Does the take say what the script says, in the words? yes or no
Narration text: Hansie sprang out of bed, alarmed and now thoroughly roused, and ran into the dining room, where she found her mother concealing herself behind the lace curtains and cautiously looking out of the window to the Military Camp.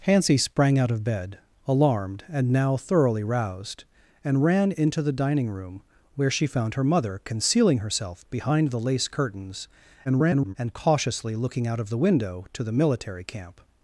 no